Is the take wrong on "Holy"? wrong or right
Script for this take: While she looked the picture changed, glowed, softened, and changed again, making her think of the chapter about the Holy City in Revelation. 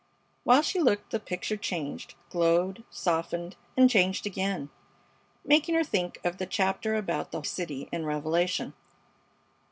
wrong